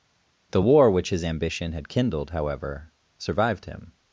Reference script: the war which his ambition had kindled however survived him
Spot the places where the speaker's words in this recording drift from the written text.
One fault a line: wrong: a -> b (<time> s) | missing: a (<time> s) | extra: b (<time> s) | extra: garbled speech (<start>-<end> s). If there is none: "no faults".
no faults